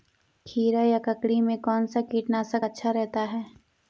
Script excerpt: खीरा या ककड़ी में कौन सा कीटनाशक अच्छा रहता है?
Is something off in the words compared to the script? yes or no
no